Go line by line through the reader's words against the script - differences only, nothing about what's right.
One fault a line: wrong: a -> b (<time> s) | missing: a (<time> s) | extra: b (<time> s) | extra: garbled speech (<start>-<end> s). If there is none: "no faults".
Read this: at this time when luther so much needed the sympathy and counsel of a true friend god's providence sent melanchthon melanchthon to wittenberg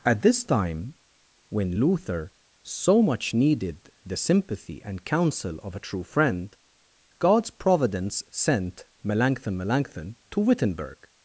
no faults